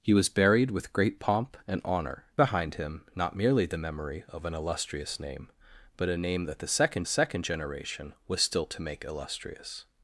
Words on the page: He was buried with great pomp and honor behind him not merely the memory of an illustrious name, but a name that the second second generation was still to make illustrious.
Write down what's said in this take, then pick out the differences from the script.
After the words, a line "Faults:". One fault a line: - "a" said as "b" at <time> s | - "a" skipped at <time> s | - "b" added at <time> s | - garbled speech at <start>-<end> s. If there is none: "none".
He was buried with great pomp and honor behind him not merely the memory of an illustrious name, but a name that the second second generation was still to make illustrious.
Faults:
none